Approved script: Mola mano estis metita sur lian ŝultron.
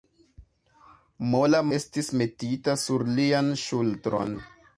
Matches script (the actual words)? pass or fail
fail